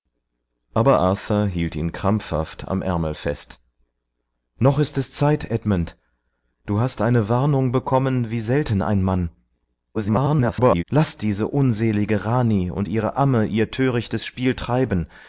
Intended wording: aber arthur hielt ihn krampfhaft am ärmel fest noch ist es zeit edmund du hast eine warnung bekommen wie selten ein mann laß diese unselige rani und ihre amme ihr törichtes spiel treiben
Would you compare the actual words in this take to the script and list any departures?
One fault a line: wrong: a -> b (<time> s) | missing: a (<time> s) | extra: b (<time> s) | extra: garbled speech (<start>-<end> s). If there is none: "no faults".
extra: garbled speech (9.9-10.8 s)